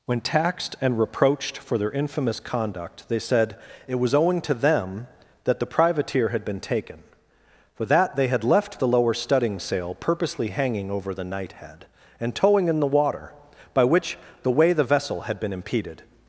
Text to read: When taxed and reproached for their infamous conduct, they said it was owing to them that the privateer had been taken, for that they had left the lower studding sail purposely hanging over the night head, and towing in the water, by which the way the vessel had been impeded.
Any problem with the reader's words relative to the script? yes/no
no